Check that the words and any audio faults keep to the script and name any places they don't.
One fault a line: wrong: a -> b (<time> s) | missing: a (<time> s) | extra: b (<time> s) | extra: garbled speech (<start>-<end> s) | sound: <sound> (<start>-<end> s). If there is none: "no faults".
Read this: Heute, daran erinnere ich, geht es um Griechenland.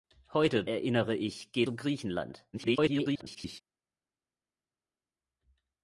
missing: daran (0.7 s)
missing: es (1.7 s)
extra: garbled speech (2.5-3.6 s)